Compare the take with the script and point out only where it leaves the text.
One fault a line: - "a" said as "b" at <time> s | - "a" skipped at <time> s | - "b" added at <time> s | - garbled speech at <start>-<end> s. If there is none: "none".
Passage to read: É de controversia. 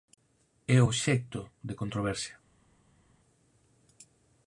- "obxecto" added at 0.9 s